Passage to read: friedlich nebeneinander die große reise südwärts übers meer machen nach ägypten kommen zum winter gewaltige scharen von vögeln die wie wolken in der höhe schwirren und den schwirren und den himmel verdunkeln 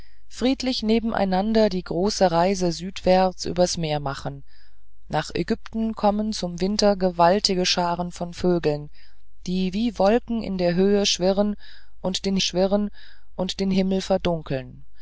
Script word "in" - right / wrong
right